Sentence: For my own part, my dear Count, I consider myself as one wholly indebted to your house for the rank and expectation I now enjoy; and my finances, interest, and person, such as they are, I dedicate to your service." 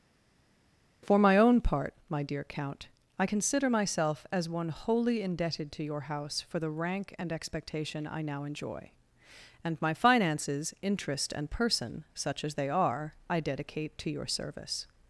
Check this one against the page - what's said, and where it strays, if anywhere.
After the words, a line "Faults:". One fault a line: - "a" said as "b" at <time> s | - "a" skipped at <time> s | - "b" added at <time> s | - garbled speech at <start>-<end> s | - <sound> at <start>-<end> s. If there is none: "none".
For my own part, my dear Count, I consider myself as one wholly indebted to your house for the rank and expectation I now enjoy; and my finances, interest, and person, such as they are, I dedicate to your service."
Faults:
none